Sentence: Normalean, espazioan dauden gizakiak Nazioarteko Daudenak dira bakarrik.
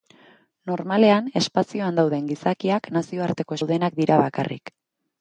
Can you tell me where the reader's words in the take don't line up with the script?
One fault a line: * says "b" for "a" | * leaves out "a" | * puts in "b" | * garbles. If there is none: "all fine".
all fine